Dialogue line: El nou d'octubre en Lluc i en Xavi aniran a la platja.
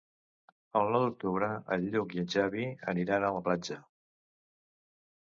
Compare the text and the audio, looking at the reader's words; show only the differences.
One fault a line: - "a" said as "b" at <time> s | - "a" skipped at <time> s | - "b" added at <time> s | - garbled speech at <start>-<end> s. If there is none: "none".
none